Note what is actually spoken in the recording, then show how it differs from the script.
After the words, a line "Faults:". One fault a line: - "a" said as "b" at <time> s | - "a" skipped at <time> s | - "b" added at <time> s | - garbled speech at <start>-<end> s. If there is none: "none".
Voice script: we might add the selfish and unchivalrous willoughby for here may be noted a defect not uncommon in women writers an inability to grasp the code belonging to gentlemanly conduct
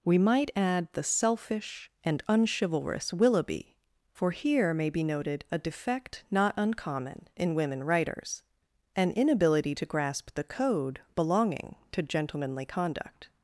we might add the selfish and unchivalrous willoughby for here may be noted a defect not uncommon in women writers an inability to grasp the code belonging to gentlemanly conduct
Faults:
none